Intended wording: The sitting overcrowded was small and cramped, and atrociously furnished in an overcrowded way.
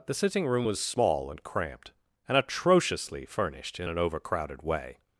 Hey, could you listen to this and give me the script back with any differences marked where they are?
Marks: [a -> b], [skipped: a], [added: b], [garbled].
The sitting [overcrowded -> room] was small and cramped, and atrociously furnished in an overcrowded way.